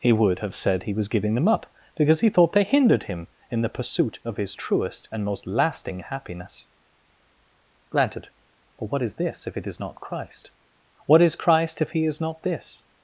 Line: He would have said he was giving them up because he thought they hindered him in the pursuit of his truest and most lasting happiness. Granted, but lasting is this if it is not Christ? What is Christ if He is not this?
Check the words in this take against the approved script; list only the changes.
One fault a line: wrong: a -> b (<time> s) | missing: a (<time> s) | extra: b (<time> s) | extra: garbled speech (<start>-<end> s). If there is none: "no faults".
wrong: lasting -> what (8.9 s)